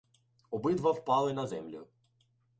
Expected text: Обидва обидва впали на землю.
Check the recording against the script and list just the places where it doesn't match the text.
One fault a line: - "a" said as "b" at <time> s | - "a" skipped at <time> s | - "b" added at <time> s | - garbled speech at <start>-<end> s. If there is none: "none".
- "обидва" skipped at 0.9 s